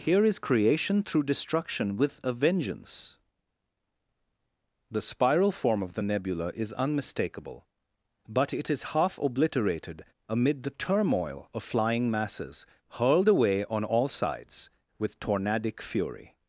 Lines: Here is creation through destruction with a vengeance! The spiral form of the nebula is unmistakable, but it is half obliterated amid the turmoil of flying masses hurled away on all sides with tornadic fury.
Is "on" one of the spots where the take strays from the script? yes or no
no